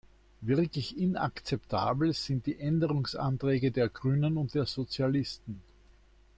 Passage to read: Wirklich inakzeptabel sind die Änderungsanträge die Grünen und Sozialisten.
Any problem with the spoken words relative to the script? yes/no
yes